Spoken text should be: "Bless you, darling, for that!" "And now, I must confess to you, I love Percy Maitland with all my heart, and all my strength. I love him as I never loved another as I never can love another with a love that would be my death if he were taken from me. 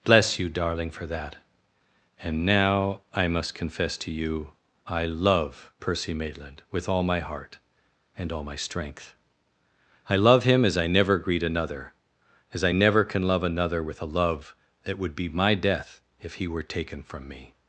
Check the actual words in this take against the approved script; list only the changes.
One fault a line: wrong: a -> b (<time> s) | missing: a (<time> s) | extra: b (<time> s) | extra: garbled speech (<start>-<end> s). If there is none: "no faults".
wrong: loved -> greet (11.2 s)